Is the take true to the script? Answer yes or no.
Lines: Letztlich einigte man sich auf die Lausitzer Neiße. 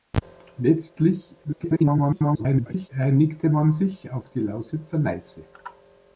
no